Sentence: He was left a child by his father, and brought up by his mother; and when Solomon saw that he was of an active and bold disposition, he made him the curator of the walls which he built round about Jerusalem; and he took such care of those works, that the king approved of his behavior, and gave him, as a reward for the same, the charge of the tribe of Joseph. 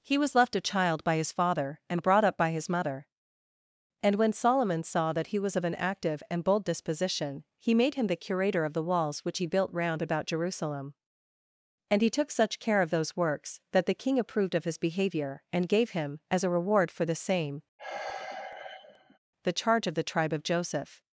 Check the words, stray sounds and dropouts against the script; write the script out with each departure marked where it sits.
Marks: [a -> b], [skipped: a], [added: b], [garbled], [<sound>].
He was left a child by his father, and brought up by his mother; and when Solomon saw that he was of an active and bold disposition, he made him the curator of the walls which he built round about Jerusalem; and he took such care of those works, that the king approved of his behavior, and gave him, as a reward for the same, [sigh] the charge of the tribe of Joseph.